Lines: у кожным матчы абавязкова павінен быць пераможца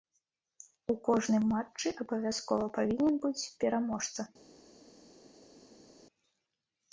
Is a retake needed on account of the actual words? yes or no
no